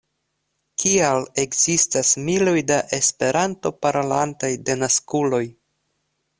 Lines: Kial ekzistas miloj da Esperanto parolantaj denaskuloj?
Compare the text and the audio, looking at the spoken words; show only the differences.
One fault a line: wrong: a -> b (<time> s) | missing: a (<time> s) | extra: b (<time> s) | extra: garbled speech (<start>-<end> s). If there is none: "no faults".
no faults